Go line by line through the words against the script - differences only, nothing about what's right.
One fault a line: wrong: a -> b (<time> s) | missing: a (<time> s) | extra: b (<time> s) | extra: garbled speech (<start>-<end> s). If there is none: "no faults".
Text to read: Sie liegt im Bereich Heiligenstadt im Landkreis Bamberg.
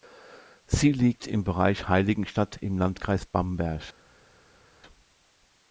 no faults